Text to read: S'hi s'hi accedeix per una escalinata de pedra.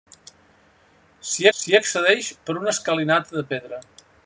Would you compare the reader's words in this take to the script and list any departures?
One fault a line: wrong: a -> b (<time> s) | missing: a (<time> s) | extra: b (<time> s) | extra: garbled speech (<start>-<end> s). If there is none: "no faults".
no faults